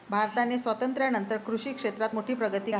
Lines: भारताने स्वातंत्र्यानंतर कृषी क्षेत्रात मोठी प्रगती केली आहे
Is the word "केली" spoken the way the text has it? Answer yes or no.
no